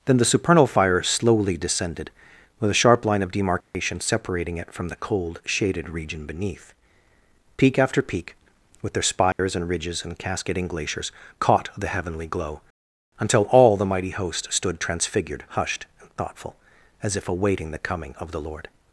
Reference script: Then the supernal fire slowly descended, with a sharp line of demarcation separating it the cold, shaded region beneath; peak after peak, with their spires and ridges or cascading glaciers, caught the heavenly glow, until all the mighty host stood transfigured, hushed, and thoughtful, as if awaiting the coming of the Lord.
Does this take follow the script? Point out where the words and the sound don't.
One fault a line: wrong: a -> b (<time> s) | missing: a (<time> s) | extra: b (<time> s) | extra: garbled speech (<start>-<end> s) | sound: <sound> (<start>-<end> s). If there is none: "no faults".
sound: dropout (3.6-3.7 s)
extra: from (4.7 s)
sound: dropout (9.3-9.4 s)
wrong: or -> and (10.0 s)